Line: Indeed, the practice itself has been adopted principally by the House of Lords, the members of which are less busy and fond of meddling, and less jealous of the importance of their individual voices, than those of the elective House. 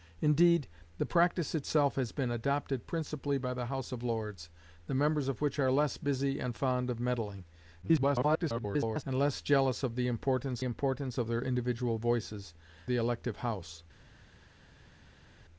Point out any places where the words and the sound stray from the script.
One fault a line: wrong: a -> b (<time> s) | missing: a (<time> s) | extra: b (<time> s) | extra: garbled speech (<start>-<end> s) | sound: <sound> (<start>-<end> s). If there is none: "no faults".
extra: garbled speech (7.8-9.0 s)
extra: importance (10.6 s)
missing: than those of (12.5 s)